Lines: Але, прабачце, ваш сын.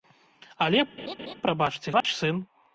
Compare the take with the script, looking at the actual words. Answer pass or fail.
pass